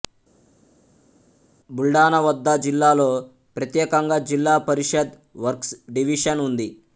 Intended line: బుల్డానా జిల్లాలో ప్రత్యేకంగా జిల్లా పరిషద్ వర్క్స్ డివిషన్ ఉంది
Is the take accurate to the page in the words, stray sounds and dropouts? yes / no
no